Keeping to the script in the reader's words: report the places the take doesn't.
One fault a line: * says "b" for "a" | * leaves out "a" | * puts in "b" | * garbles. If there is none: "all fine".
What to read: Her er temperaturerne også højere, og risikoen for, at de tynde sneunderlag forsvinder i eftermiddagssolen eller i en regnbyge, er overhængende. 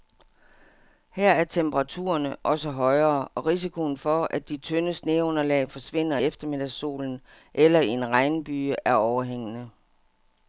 * leaves out "i"